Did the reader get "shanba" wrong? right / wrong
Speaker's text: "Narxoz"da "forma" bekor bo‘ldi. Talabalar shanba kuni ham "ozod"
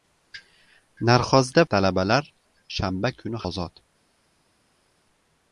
right